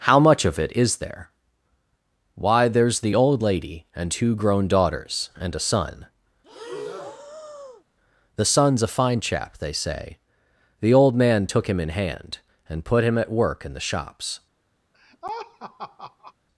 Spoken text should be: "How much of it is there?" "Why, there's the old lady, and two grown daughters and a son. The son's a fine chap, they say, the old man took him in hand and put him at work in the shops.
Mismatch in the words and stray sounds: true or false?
true